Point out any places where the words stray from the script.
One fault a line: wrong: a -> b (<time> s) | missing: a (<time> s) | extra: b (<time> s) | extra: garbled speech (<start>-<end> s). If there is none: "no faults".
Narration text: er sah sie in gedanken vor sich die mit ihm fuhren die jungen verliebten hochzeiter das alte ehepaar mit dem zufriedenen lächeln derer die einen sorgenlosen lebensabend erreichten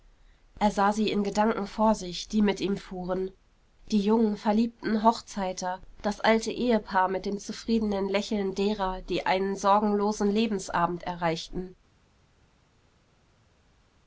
no faults